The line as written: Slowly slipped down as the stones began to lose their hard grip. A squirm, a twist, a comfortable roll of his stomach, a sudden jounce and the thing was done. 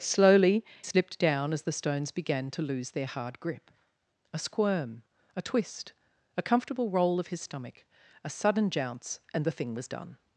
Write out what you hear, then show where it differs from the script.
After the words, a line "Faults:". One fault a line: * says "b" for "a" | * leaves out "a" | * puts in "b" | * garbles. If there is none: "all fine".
Slowly slipped down as the stones began to lose their hard grip. A squirm, a twist, a comfortable roll of his stomach, a sudden jounce and the thing was done.
Faults:
all fine